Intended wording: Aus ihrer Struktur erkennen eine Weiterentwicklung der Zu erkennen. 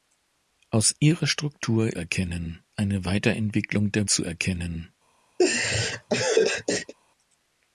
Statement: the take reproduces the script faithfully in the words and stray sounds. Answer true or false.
false